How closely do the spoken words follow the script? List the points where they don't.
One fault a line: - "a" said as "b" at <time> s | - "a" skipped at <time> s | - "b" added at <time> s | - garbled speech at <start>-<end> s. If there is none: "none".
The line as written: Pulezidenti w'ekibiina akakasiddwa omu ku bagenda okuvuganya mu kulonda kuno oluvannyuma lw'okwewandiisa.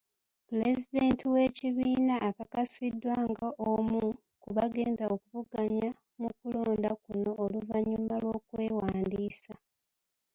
- "nga" added at 3.3 s